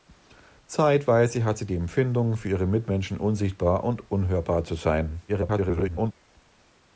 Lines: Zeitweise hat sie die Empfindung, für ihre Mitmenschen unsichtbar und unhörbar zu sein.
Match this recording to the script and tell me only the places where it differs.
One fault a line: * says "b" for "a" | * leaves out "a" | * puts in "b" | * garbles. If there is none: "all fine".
* garbles